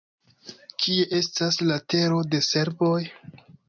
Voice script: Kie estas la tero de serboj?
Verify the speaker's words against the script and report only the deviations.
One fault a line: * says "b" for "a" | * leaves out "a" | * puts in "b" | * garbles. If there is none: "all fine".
all fine